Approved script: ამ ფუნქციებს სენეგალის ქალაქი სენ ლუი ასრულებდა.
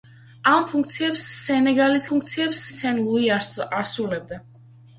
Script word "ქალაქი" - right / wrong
wrong